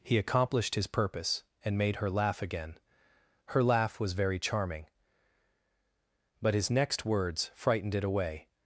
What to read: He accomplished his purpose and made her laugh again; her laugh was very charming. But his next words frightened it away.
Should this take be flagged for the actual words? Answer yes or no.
no